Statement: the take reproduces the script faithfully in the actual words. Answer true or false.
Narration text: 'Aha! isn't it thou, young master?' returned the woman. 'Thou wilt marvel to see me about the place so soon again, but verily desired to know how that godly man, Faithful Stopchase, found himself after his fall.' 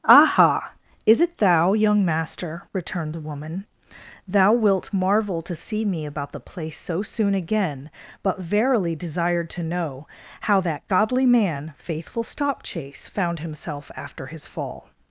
false